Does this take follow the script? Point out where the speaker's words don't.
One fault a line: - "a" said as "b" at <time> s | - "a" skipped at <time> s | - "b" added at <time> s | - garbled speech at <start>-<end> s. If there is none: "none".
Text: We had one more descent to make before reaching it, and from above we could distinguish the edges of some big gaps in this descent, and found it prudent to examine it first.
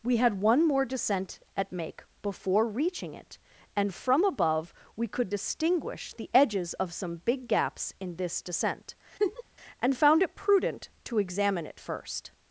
- "to" said as "at" at 1.6 s